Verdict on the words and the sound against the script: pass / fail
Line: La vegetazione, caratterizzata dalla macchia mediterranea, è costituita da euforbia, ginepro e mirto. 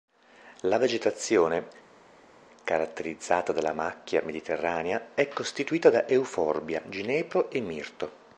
pass